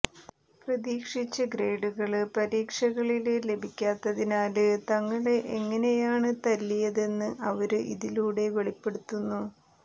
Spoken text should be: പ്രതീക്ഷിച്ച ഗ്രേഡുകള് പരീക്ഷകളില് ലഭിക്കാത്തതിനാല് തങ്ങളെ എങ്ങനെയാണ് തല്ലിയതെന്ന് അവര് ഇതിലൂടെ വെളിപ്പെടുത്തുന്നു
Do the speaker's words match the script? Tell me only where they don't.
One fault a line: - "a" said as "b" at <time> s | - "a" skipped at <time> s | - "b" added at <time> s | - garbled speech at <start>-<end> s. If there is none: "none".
none